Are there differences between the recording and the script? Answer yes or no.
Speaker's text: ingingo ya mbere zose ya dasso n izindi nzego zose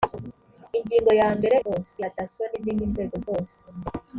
no